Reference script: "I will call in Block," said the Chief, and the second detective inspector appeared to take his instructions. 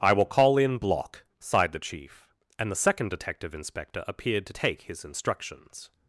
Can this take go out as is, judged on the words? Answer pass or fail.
fail